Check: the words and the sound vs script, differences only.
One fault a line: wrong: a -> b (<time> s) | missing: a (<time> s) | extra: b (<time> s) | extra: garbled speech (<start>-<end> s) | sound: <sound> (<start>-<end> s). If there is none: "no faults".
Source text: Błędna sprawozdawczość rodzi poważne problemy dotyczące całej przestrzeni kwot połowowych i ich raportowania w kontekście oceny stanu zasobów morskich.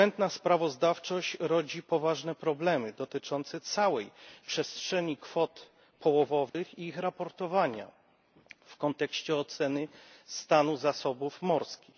sound: dropout (6.5-6.5 s)